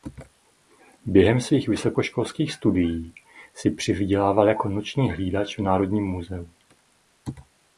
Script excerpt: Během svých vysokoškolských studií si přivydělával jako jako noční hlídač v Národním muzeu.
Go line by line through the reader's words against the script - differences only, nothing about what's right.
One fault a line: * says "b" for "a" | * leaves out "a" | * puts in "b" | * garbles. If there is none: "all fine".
* leaves out "jako"